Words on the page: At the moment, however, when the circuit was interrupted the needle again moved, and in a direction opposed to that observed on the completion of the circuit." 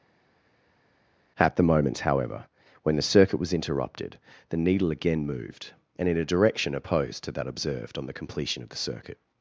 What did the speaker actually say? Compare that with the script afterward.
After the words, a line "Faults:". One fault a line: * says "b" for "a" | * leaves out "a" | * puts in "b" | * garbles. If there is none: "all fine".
At the moment, however, when the circuit was interrupted the needle again moved, and in a direction opposed to that observed on the completion of the circuit."
Faults:
all fine